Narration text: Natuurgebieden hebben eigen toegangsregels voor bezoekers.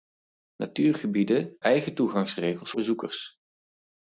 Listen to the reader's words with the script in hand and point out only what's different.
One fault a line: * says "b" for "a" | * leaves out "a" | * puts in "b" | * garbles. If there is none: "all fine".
* leaves out "hebben"
* leaves out "voor"